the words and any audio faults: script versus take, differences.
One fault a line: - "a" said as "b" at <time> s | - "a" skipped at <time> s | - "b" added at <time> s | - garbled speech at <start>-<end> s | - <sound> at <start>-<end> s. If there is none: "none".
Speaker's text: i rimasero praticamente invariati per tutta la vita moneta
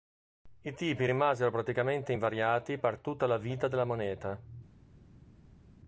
- "tipi" added at 0.7 s
- "della" added at 3.7 s